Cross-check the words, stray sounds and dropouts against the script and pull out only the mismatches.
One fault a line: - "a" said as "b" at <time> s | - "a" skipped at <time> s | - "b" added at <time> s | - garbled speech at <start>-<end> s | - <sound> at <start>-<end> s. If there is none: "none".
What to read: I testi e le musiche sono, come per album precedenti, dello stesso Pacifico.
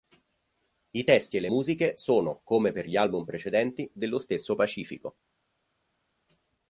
- "gli" added at 2.8 s